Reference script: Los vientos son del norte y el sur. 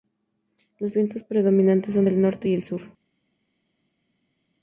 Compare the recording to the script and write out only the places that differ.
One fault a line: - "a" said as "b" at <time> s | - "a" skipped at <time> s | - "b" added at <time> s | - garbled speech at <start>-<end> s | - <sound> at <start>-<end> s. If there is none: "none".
- "predominantes" added at 1.2 s